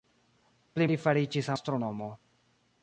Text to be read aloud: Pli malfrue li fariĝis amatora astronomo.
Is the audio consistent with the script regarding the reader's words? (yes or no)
no